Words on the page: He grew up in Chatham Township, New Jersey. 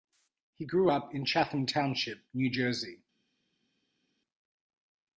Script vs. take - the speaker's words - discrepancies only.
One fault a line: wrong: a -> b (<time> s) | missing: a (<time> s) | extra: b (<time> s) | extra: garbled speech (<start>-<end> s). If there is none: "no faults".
no faults